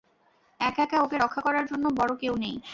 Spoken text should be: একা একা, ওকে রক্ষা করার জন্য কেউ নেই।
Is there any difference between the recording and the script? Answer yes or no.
yes